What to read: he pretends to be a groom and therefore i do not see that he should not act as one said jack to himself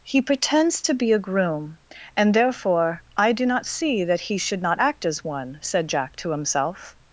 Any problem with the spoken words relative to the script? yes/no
no